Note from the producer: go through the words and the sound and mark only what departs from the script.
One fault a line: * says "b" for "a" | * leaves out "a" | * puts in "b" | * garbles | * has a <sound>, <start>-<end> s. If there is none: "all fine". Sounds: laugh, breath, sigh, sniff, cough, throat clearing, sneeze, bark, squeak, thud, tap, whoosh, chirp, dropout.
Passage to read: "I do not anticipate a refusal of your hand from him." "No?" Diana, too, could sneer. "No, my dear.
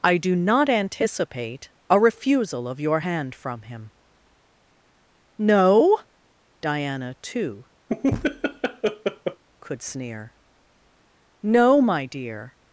* has a laugh, 7.9-9.4 s